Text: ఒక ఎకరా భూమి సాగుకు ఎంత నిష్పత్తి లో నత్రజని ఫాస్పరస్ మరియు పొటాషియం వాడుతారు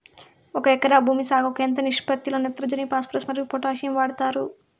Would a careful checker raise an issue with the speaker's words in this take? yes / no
no